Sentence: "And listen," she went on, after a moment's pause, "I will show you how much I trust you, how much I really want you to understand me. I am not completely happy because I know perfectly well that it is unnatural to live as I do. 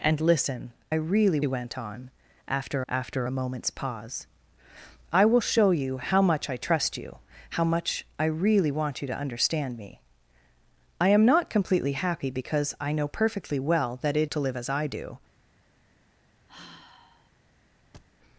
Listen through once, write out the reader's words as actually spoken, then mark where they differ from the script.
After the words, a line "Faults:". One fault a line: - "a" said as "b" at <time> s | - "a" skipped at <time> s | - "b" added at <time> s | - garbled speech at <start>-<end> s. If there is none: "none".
"And listen," really went on, after after a moment's pause, "I will show you how much I trust you, how much I really want you to understand me. I am not completely happy because I know perfectly well that it to live as I do.
Faults:
- "she" said as "really" at 0.9 s
- "after" added at 2.9 s
- "is unnatural" skipped at 14.3 s